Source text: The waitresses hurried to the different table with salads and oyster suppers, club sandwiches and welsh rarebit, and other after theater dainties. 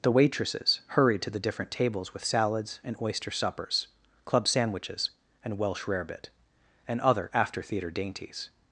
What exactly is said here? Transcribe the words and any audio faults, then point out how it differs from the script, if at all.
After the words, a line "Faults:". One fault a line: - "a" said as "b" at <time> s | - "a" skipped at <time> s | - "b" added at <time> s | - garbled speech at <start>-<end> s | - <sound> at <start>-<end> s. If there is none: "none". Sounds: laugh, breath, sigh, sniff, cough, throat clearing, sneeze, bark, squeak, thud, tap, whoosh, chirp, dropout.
The waitresses hurried to the different tables with salads and oyster suppers, club sandwiches and welsh rarebit, and other after theater dainties.
Faults:
- "table" said as "tables" at 1.7 s